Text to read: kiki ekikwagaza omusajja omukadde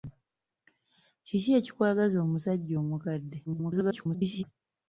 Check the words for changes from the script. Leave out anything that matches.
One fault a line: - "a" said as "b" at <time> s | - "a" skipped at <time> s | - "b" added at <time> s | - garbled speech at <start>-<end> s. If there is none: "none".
- garbled speech at 3.5-4.4 s